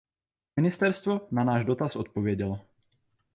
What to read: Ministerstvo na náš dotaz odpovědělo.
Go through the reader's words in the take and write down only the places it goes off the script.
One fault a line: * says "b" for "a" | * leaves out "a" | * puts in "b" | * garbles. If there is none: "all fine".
all fine